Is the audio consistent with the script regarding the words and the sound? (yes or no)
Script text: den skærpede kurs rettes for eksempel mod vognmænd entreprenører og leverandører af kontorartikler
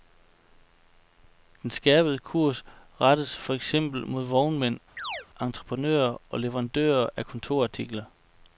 no